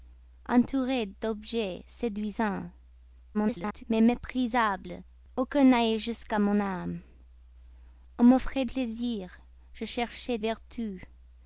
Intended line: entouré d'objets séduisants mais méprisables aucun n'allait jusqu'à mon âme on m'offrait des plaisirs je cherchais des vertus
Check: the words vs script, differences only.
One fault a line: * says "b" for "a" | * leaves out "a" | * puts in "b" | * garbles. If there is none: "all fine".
* garbles
* leaves out "des"
* leaves out "des"